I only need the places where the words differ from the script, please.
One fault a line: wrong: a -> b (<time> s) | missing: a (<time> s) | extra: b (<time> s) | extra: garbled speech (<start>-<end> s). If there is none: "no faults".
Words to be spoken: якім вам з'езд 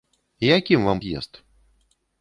no faults